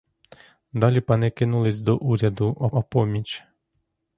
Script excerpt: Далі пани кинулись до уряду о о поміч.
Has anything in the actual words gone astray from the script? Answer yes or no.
no